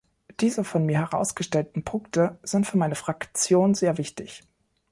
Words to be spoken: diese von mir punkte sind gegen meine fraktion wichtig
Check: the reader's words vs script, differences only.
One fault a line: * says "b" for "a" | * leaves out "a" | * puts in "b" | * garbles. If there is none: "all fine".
* puts in "herausgestellten"
* says "für" for "gegen"
* puts in "sehr"